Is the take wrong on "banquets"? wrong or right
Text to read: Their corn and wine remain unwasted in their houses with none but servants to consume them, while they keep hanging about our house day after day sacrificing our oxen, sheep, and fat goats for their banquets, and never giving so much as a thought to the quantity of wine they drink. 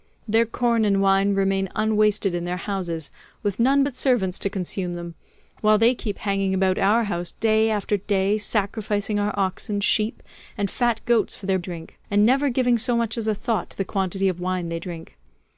wrong